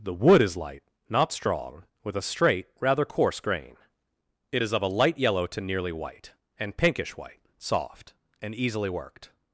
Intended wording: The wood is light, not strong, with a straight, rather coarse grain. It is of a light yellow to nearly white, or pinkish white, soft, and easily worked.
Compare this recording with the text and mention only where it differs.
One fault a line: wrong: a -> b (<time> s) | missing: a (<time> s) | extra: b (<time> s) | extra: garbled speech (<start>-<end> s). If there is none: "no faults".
wrong: or -> and (6.6 s)